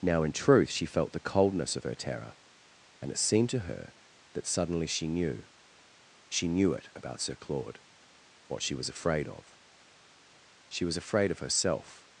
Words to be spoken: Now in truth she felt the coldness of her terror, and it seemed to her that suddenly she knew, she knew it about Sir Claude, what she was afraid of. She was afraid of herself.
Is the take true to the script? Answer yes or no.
yes